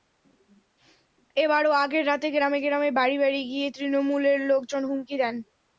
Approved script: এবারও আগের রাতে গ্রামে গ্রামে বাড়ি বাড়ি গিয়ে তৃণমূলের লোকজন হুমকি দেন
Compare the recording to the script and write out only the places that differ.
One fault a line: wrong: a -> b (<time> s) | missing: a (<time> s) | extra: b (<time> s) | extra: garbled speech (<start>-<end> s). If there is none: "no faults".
no faults